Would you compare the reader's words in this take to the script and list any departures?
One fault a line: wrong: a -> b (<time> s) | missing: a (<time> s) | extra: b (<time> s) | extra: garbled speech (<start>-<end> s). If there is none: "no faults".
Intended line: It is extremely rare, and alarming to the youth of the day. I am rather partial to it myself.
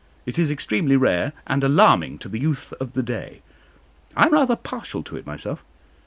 no faults